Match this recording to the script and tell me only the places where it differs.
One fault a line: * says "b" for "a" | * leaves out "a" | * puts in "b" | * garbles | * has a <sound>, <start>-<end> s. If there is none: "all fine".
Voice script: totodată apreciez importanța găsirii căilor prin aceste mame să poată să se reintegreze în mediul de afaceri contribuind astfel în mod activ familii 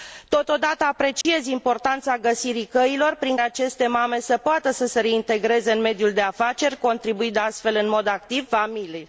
* has a dropout, 1.2-1.3 s